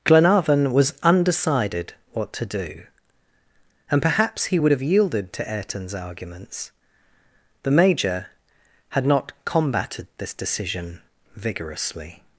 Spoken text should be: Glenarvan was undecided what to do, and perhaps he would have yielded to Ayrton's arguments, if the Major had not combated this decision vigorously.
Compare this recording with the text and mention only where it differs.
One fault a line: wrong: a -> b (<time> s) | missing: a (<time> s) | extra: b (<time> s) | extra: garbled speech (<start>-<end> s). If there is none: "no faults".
missing: if (6.7 s)